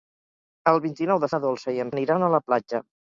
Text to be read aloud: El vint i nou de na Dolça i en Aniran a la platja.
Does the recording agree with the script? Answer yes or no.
yes